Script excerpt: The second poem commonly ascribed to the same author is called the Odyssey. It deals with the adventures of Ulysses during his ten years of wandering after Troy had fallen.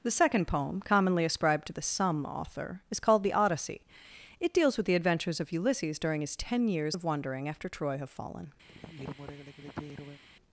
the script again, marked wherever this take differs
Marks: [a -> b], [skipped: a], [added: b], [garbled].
The second poem commonly ascribed to the [same -> some] author is called the Odyssey. It deals with the adventures of Ulysses during his ten years of wandering after Troy [had -> have] fallen.